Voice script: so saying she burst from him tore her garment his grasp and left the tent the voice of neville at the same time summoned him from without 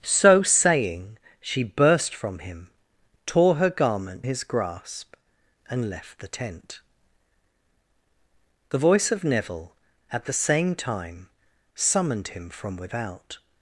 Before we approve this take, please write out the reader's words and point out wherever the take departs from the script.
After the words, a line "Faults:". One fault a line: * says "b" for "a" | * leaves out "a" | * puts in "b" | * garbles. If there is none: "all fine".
so saying she burst from him tore her garment his grasp and left the tent the voice of neville at the same time summoned him from without
Faults:
all fine